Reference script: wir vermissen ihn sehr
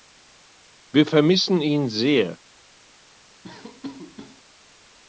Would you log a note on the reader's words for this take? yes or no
no